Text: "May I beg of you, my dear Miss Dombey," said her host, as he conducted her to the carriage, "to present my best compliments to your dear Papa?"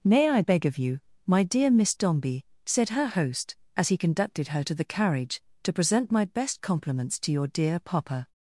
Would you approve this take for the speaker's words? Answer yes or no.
yes